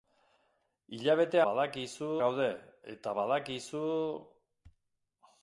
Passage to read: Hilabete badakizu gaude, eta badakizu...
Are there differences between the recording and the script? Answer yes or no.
no